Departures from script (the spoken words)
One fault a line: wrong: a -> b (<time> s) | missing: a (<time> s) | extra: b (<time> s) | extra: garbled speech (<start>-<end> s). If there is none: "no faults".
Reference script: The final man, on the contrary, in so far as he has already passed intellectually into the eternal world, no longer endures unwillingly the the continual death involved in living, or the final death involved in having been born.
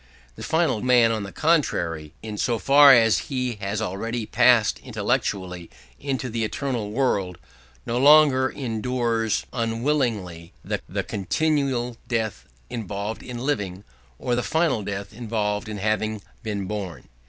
no faults